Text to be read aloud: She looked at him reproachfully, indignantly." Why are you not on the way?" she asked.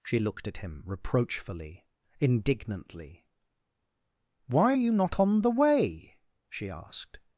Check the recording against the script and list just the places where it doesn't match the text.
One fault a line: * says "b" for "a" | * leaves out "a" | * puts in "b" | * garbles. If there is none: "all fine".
all fine